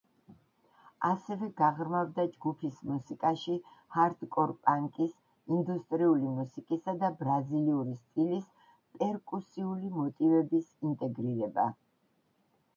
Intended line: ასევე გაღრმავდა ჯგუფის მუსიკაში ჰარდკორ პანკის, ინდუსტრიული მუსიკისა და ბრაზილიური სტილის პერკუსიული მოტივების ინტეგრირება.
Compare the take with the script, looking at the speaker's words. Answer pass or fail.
pass